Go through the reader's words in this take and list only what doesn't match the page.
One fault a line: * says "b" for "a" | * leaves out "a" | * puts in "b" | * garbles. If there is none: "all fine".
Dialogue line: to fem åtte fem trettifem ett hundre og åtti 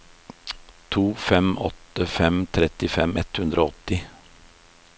all fine